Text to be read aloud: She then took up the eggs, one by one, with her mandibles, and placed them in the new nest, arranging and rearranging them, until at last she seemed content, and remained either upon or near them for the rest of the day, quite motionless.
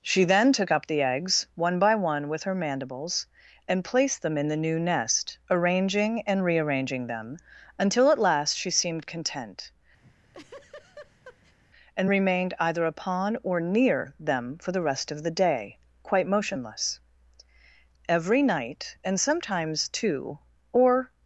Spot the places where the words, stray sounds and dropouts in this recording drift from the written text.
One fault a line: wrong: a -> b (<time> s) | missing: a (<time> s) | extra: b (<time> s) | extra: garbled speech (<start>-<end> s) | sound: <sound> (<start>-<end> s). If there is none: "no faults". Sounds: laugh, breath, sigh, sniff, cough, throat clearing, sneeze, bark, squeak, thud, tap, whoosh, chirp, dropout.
sound: laugh (10.0-11.6 s)
extra: Every night and sometimes two or (18.1 s)